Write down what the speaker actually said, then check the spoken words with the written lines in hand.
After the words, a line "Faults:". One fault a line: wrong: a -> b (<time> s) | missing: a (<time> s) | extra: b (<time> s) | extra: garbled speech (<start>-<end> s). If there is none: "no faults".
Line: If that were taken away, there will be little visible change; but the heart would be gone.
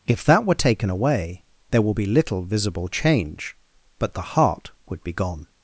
If that were taken away, there will be little visible change; but the heart would be gone.
Faults:
no faults